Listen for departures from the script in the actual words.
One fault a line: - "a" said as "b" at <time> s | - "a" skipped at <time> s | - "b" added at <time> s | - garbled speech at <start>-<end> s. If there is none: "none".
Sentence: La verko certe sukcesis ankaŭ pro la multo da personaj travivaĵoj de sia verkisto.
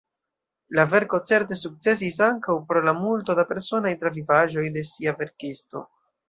none